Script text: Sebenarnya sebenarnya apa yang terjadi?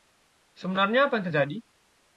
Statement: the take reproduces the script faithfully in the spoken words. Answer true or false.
false